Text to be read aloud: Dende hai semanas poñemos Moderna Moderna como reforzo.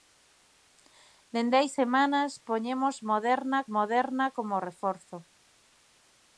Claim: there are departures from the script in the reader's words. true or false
false